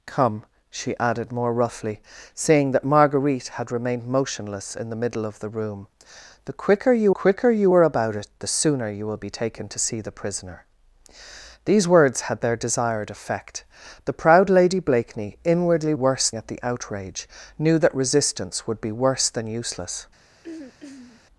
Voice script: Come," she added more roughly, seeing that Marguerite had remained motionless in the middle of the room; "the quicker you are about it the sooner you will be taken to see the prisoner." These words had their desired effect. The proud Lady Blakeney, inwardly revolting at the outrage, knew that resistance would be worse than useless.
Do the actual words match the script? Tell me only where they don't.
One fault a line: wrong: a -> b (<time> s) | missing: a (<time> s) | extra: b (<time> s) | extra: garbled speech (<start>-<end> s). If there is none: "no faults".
extra: quicker you (7.1 s)
wrong: revolting -> worse (15.9 s)